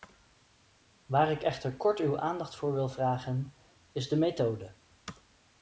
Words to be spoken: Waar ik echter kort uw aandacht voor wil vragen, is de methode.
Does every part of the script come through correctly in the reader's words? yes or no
yes